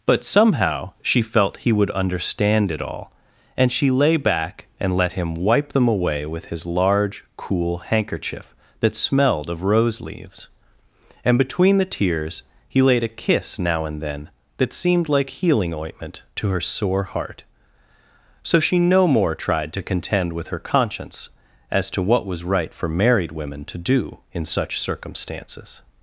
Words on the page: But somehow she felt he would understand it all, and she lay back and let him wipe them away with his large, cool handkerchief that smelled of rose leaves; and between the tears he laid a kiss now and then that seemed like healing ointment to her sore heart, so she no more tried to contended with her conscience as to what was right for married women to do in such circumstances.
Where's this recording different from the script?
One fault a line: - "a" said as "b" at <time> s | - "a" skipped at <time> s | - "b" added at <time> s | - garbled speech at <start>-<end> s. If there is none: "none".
- "contended" said as "contend" at 19.8 s